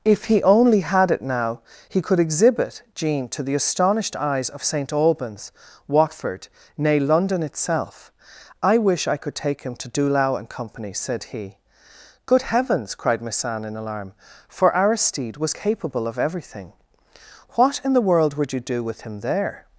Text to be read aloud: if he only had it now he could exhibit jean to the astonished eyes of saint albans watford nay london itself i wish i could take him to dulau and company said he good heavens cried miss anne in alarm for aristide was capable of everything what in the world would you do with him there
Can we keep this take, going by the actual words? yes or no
yes